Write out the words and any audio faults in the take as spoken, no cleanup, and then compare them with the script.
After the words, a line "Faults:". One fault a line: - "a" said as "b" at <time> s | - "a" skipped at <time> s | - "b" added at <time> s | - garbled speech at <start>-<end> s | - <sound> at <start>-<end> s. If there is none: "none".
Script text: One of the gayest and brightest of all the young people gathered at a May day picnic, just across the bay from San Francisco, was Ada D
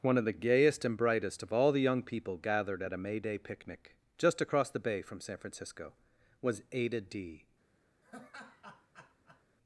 One of the gayest and brightest of all the young people gathered at a May day picnic, just across the bay from San Francisco, was Ada D
Faults:
- laugh at 8.0-9.4 s